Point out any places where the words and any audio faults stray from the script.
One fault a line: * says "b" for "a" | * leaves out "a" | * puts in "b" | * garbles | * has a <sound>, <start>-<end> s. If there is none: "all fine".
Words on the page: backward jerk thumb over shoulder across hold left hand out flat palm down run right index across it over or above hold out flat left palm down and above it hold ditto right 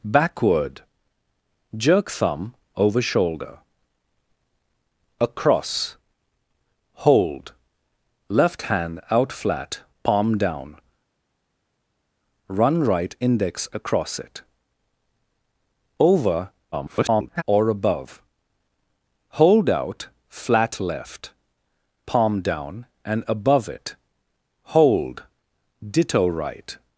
* garbles